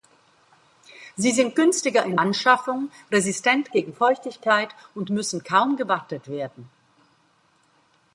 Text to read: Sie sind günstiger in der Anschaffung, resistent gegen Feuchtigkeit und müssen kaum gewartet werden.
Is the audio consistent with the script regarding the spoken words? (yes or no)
no